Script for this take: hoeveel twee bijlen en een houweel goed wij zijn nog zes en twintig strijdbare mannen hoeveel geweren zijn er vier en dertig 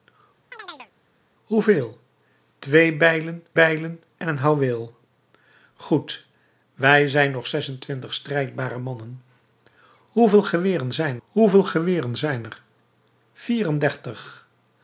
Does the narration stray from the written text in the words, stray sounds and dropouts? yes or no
yes